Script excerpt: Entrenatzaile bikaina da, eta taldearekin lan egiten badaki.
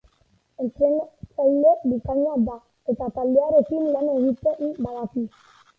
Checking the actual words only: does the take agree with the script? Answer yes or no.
yes